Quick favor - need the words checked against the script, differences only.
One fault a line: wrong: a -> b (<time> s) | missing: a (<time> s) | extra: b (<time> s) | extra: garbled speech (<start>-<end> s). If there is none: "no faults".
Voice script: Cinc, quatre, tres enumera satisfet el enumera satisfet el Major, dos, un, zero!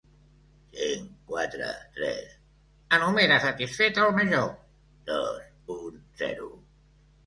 missing: enumera satisfet el (4.2 s)